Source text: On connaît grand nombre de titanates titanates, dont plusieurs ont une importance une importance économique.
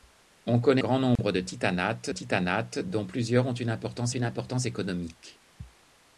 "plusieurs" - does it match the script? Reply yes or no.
yes